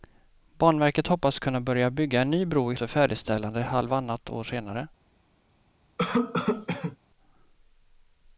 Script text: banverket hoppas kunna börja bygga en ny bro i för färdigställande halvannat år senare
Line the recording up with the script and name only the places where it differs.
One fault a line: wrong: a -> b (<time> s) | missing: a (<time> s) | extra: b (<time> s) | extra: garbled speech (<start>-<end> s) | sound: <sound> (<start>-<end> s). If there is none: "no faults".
sound: cough (6.0-7.0 s)